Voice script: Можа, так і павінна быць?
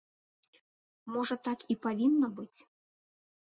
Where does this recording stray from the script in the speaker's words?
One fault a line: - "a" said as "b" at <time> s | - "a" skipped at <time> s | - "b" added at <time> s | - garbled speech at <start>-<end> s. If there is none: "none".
none